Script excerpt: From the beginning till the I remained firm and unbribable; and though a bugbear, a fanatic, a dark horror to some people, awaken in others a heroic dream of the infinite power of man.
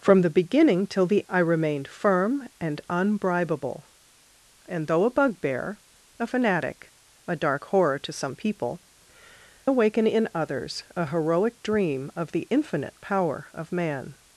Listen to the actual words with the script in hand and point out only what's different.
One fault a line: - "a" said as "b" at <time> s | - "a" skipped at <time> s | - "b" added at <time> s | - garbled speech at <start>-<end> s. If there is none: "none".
none